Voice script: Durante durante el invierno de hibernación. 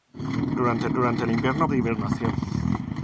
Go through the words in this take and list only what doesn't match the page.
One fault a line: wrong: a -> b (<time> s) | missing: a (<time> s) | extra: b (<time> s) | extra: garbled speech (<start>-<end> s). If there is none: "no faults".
no faults